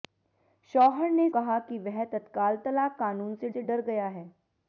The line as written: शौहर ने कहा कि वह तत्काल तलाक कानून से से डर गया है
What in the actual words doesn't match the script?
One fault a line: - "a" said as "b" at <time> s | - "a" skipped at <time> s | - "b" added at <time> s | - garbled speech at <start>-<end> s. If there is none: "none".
none